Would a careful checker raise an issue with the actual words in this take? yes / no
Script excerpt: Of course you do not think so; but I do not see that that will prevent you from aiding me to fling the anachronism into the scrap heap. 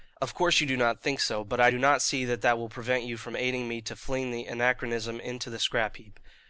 no